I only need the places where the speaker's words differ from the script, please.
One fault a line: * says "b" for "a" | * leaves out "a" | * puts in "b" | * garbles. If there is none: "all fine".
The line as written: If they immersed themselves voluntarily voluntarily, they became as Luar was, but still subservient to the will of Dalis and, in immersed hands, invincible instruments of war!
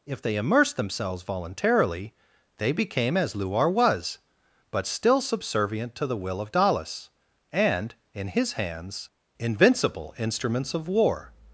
* leaves out "voluntarily"
* says "his" for "immersed"